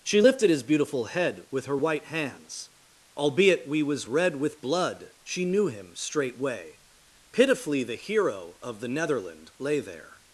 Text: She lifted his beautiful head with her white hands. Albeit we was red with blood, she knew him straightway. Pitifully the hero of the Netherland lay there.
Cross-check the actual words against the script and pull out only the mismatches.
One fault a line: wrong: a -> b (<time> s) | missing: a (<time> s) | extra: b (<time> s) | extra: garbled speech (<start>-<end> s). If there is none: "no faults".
no faults